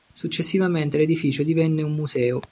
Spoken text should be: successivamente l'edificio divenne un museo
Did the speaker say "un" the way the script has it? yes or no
yes